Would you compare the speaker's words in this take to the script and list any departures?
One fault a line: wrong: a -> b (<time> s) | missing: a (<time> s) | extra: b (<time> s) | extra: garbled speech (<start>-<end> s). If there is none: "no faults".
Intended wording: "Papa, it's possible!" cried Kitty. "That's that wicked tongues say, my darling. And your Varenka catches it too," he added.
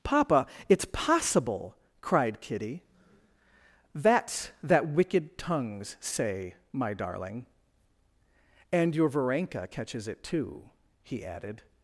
no faults